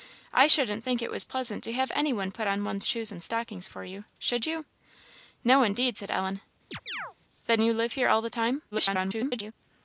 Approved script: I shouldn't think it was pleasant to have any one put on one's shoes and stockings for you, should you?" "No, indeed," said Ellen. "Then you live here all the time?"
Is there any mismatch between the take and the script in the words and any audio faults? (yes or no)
yes